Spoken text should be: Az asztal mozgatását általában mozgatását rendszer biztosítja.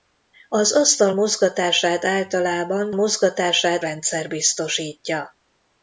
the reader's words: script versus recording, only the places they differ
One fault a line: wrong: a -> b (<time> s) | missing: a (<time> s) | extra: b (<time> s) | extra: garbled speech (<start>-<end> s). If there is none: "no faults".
no faults